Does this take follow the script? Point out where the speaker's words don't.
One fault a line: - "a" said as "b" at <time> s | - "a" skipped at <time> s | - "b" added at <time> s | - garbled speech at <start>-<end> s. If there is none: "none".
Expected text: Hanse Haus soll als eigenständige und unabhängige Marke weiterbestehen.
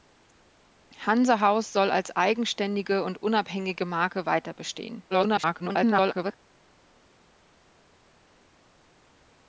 - garbled speech at 5.1-6.3 s